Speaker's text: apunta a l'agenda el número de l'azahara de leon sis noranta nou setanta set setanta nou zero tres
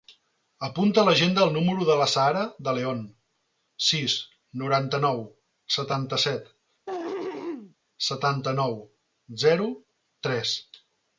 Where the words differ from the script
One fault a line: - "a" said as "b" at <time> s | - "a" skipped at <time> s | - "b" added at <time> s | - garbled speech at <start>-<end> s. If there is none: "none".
none